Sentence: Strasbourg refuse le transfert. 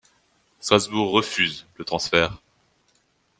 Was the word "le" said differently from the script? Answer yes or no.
no